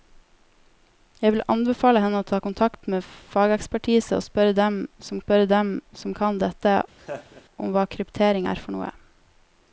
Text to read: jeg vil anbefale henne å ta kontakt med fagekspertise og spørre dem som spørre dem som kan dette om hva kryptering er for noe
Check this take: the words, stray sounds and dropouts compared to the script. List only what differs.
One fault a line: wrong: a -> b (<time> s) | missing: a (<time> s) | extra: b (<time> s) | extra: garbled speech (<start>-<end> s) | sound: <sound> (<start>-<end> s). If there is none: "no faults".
sound: laugh (7.0-7.4 s)